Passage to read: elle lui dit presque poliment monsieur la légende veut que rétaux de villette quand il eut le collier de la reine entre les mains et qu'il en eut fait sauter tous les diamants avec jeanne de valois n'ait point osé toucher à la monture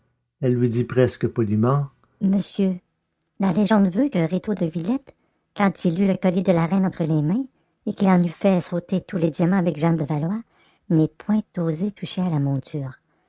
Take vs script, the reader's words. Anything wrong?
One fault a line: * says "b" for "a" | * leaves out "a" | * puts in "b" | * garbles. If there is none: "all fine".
all fine